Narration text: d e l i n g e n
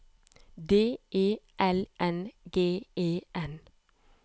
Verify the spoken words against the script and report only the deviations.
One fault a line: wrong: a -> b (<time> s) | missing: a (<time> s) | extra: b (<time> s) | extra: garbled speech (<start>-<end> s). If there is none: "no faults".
missing: i (1.9 s)